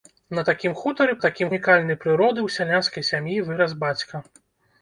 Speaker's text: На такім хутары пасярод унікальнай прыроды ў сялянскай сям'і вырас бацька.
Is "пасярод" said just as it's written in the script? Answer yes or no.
no